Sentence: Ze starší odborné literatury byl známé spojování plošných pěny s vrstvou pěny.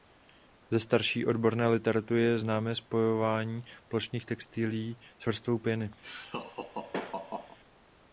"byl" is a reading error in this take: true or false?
true